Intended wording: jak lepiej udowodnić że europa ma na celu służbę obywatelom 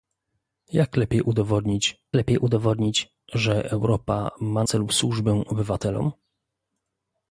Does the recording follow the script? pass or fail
fail